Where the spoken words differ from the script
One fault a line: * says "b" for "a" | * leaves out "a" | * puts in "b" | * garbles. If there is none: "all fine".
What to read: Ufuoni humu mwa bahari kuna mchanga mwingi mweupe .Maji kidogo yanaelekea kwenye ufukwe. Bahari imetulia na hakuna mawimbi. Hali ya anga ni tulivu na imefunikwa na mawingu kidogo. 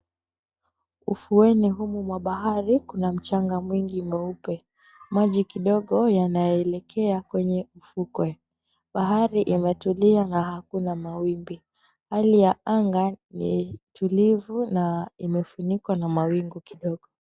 all fine